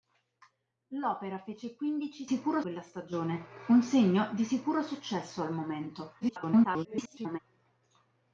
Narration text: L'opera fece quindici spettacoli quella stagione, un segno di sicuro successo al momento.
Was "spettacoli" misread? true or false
true